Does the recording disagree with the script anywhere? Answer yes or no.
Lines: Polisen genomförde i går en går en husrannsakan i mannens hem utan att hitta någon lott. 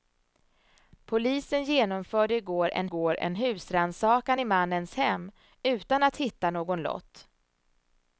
no